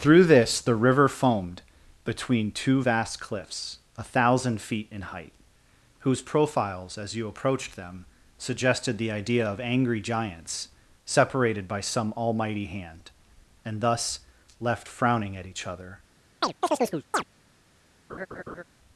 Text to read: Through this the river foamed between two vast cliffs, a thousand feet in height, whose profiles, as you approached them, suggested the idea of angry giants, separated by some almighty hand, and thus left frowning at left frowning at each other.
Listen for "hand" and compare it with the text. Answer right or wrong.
right